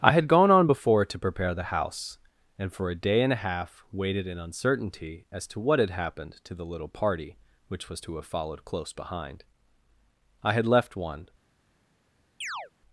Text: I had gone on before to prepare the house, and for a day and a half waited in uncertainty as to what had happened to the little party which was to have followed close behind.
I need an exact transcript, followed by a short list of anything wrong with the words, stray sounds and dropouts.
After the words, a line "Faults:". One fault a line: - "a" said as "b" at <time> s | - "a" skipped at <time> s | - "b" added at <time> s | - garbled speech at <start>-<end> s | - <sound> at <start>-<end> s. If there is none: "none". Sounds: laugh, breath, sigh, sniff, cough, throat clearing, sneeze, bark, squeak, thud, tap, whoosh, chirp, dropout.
I had gone on before to prepare the house, and for a day and a half waited in uncertainty as to what had happened to the little party which was to have followed close behind. I had left one
Faults:
- "I had left one" added at 10.4 s
- chirp at 12.4-12.7 s